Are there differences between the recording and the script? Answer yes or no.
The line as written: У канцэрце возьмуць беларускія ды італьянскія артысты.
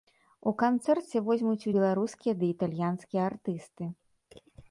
no